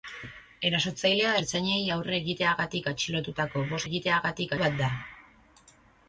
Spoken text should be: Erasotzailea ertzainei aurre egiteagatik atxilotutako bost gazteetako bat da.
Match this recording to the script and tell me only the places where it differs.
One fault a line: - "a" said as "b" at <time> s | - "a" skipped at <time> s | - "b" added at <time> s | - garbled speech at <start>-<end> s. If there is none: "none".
- "gazteetako" said as "egiteagatik" at 3.8 s